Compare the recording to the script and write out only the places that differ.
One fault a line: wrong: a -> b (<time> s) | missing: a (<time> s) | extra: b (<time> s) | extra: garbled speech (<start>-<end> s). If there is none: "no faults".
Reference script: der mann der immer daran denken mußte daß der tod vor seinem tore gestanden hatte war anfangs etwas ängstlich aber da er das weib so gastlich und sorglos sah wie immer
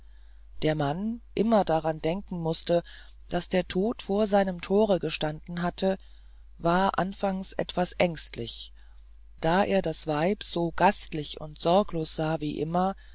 missing: der (1.2 s)
missing: aber (8.7 s)